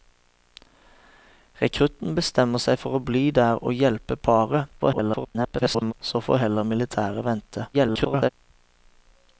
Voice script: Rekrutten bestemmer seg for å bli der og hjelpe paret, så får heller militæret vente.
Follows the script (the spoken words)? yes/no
no